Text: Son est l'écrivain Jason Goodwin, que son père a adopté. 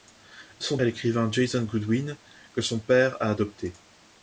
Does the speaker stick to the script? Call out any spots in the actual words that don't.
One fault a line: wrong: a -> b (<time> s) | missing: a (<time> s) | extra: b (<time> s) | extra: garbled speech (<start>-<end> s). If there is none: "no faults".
no faults